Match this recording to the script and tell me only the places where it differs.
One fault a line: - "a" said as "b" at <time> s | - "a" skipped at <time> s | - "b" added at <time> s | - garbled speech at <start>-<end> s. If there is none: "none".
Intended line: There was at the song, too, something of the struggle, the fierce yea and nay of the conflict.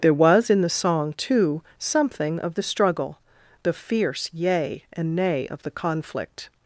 - "at" said as "in" at 0.5 s